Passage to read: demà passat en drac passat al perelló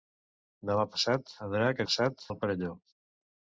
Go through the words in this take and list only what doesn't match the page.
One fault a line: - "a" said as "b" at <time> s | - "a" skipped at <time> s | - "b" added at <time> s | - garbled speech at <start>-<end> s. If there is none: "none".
none